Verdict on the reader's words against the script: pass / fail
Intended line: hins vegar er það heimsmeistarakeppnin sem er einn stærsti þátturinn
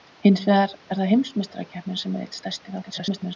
fail